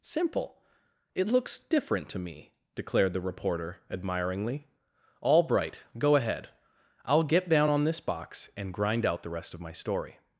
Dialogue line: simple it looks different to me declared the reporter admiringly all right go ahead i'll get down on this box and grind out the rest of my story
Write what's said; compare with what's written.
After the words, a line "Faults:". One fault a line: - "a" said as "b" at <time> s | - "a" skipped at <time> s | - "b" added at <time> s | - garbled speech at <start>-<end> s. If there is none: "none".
simple it looks different to me declared the reporter admiringly all bright go ahead i'll get down on this box and grind out the rest of my story
Faults:
- "right" said as "bright" at 5.4 s